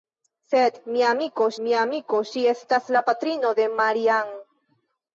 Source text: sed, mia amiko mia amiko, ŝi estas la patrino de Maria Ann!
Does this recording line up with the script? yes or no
yes